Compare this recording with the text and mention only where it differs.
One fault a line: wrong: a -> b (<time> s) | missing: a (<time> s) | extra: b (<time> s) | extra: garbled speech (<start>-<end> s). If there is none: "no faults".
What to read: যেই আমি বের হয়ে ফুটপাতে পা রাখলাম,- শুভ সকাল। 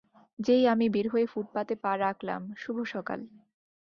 no faults